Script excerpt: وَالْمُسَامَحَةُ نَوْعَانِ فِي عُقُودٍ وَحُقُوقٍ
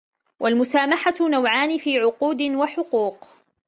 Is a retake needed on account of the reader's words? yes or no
no